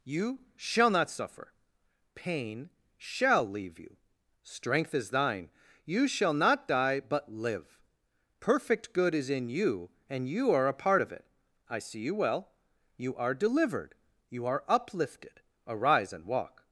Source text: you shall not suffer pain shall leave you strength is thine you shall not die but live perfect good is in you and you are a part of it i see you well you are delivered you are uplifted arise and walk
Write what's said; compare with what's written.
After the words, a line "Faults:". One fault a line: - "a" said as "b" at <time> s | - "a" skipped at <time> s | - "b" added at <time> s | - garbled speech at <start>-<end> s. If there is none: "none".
you shall not suffer pain shall leave you strength is thine you shall not die but live perfect good is in you and you are a part of it i see you well you are delivered you are uplifted arise and walk
Faults:
none